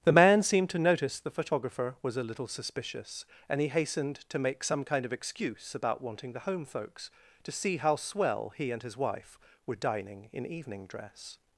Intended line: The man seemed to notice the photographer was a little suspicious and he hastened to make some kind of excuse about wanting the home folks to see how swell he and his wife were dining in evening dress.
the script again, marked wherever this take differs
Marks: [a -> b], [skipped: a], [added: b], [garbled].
The man seemed to notice the photographer was a little suspicious and he hastened to make some kind of excuse about wanting the home folks to see how swell he and his wife were dining in evening dress.